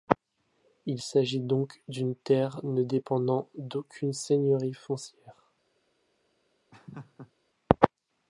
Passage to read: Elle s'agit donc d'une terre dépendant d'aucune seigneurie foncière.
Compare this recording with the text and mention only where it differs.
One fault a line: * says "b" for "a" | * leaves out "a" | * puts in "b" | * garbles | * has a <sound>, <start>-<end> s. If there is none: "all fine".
* says "Il" for "Elle"
* puts in "ne"
* has a laugh, 6.7-7.3 s